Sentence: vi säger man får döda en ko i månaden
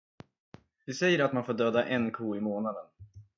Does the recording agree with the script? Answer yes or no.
no